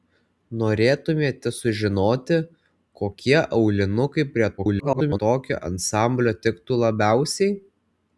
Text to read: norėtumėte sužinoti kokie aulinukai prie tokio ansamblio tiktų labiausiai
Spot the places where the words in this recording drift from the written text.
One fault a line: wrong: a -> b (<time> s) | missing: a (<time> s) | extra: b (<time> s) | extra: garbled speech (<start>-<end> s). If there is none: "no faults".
extra: garbled speech (4.6-5.2 s)